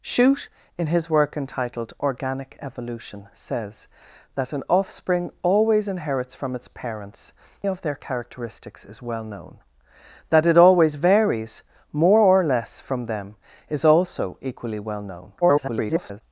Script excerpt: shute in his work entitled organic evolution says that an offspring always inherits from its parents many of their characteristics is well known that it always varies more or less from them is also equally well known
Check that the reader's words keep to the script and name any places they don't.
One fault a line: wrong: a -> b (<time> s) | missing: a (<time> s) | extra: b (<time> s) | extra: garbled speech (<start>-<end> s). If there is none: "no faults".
missing: many (7.3 s)
extra: garbled speech (15.4-16.2 s)